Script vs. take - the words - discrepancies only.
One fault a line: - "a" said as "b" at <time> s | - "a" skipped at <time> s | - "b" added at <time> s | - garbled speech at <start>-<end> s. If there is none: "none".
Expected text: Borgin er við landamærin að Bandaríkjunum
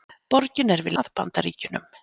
- "landamærin" skipped at 0.9 s